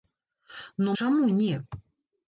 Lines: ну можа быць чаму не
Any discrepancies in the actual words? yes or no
yes